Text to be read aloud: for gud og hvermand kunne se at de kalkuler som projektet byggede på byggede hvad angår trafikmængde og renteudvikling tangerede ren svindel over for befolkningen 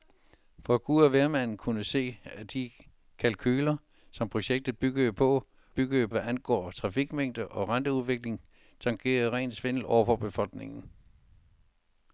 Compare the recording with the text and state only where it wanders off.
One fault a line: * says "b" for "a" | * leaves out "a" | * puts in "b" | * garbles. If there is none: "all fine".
all fine